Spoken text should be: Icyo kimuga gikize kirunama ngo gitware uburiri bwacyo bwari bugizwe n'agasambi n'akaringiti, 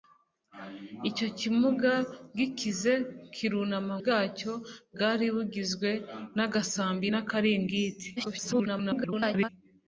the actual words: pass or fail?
fail